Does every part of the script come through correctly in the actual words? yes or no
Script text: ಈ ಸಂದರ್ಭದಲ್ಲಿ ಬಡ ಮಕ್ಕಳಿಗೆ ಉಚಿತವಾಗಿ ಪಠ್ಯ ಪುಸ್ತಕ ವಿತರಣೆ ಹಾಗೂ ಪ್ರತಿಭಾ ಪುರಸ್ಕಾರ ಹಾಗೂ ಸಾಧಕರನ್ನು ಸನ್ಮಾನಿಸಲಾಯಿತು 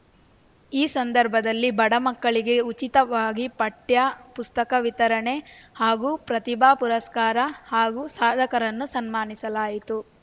yes